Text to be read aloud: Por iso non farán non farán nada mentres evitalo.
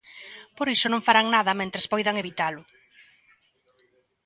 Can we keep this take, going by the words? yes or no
no